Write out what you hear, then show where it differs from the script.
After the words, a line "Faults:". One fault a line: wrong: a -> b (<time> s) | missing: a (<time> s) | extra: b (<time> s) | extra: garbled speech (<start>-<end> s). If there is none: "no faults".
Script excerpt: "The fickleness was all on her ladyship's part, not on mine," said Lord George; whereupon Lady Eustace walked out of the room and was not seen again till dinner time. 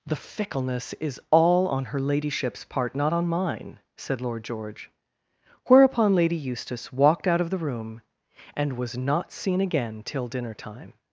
"The fickleness is all on her ladyship's part, not on mine," said Lord George; whereupon Lady Eustace walked out of the room and was not seen again till dinner time.
Faults:
wrong: was -> is (0.9 s)